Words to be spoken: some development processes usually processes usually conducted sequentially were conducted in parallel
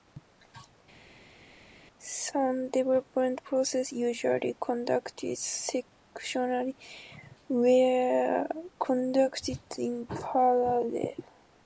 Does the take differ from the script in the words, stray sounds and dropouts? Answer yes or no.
yes